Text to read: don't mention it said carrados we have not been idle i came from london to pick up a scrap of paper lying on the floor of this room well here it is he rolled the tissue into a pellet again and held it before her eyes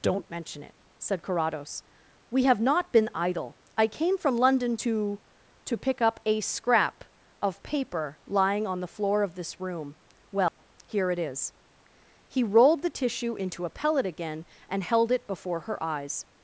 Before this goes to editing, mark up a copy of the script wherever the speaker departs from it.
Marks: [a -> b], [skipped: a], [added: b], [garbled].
don't mention it said carrados we have not been idle i came from london to [added: to] pick up a scrap of paper lying on the floor of this room well here it is he rolled the tissue into a pellet again and held it before her eyes